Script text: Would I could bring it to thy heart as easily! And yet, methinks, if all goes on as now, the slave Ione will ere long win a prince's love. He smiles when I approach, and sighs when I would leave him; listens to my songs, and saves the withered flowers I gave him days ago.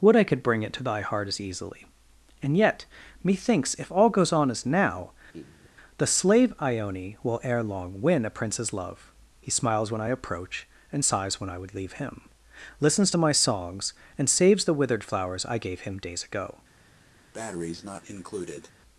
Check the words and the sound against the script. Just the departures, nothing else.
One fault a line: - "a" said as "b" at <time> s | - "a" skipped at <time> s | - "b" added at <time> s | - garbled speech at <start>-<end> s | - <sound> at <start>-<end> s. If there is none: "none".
- laugh at 5.3-5.7 s
- breath at 17.3-18.7 s